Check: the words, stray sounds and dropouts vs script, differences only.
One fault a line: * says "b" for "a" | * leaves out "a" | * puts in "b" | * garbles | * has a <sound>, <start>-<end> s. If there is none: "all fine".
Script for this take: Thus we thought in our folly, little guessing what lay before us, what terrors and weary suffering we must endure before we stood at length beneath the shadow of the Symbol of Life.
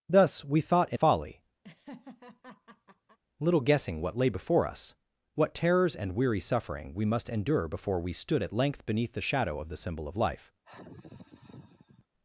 * leaves out "our"
* has a laugh, 1.6-3.2 s
* has a sigh, 10.6-12.1 s